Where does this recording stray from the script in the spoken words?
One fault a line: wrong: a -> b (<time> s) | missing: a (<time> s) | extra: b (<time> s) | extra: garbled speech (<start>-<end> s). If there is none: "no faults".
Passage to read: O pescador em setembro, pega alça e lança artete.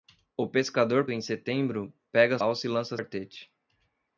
no faults